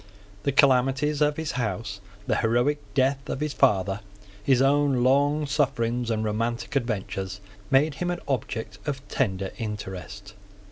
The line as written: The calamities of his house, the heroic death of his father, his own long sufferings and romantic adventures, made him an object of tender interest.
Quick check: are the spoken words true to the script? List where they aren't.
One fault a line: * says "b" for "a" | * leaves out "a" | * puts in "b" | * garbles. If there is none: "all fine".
all fine